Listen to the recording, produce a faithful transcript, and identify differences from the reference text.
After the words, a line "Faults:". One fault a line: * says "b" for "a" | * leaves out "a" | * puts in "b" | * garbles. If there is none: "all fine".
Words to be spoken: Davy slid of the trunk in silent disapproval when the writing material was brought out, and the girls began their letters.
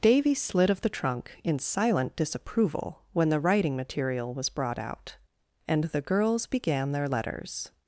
Davy slid of the trunk in silent disapproval when the writing material was brought out, and the girls began their letters.
Faults:
all fine